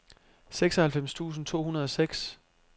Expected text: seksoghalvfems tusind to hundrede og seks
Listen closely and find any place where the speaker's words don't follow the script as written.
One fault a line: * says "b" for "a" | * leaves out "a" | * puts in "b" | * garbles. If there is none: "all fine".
all fine